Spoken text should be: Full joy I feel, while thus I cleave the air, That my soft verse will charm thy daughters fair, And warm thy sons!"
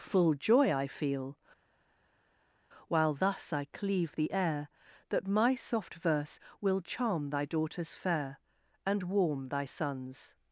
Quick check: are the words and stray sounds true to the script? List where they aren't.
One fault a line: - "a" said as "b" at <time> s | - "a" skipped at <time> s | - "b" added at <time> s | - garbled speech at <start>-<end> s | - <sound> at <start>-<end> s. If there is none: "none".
none